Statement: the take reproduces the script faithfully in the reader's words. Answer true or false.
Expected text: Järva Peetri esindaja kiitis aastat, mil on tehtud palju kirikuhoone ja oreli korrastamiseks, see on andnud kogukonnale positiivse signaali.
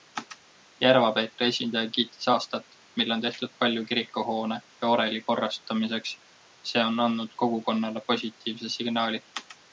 true